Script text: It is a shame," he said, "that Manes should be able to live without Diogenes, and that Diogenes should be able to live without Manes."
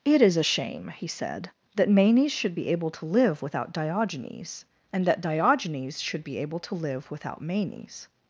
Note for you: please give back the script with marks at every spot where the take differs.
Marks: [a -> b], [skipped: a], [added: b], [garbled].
It is a shame," he said, "that Manes should be able to live without Diogenes, and that Diogenes should be able to live without Manes."